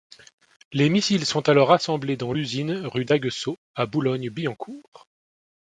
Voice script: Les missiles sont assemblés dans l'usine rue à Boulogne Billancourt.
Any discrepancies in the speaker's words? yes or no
yes